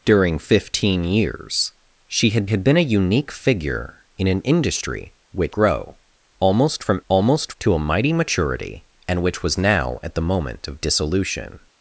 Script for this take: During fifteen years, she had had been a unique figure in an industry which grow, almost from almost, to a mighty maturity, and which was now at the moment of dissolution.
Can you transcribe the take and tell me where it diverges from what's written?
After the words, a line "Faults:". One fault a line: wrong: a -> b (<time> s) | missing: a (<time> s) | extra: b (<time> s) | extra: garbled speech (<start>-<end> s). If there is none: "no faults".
During fifteen years, she had had been a unique figure in an industry which grow, almost from almost, to a mighty maturity, and which was now at the moment of dissolution.
Faults:
no faults